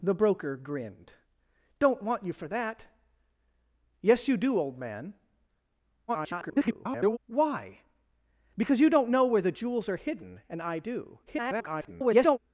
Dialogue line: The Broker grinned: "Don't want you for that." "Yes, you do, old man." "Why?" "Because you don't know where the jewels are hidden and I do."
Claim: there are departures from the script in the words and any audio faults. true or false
true